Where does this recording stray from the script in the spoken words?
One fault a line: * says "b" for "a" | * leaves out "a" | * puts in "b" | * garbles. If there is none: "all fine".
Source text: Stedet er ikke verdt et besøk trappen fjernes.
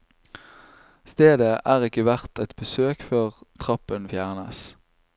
* puts in "før"